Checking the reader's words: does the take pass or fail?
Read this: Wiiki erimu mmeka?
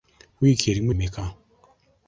pass